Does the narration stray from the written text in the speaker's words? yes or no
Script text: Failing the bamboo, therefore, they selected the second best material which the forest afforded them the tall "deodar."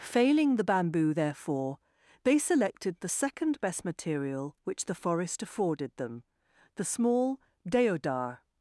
yes